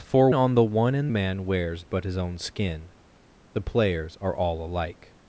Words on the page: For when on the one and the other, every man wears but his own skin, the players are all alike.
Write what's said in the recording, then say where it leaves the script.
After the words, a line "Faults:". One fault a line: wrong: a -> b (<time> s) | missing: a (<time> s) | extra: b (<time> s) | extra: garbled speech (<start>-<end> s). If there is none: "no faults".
For on the one and man wears but his own skin, the players are all alike.
Faults:
missing: when (0.3 s)
missing: the other every (1.1 s)